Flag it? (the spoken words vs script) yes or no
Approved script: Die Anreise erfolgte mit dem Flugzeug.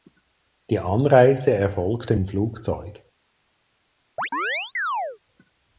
yes